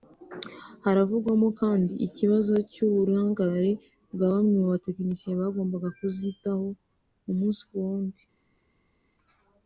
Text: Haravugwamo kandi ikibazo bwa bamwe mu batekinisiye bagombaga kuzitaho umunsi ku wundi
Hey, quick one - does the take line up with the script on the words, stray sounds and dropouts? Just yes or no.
no